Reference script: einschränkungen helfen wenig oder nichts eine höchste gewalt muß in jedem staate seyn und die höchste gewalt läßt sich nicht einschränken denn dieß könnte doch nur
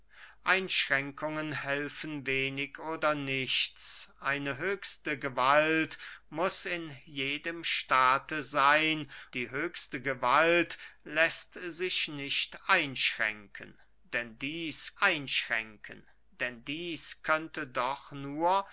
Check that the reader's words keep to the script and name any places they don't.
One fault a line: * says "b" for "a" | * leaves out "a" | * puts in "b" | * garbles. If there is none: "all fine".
* leaves out "und"
* puts in "einschränken denn dieß"